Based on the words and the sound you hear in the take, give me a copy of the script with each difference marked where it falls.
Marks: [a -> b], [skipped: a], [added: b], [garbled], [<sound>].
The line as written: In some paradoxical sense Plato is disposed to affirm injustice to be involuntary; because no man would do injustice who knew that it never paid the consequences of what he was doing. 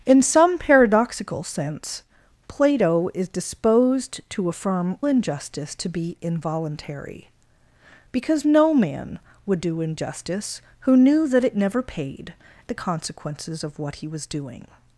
In some paradoxical sense Plato is disposed to affirm injustice to be involuntary; because no man would do injustice who knew that it never paid the consequences of what he was doing.